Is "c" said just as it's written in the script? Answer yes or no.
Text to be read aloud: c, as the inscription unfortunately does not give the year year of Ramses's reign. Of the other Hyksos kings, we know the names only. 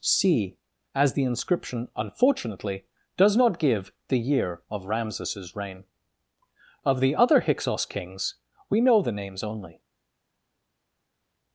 yes